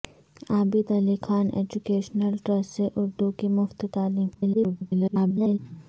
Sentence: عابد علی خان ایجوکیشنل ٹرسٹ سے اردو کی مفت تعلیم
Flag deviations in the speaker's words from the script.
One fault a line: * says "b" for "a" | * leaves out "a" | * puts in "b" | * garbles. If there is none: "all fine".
* garbles